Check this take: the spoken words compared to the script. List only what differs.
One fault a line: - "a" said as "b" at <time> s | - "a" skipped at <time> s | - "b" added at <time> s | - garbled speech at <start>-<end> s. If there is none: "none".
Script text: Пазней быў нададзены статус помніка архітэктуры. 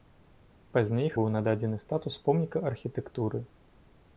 none